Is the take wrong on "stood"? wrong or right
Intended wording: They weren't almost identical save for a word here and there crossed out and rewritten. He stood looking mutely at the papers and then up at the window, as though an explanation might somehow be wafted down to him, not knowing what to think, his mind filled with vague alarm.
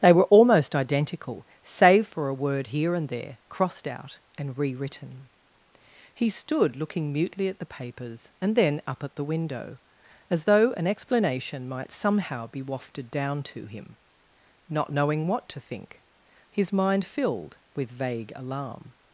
right